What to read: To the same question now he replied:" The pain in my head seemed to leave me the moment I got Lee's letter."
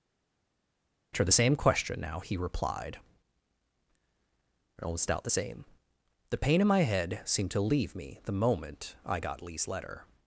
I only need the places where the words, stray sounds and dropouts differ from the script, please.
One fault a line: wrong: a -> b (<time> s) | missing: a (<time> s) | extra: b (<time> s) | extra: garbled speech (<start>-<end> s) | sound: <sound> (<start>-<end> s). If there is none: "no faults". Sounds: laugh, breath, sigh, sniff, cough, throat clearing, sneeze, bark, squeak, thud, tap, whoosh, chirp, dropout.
extra: almost out the same (4.8 s)